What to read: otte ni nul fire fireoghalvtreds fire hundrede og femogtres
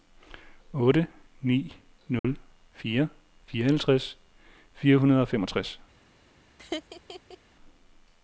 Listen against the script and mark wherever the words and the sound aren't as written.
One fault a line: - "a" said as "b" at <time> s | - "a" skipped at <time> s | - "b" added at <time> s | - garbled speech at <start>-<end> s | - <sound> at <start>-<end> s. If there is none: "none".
- dropout at 2.2-2.2 s
- laugh at 6.6-7.4 s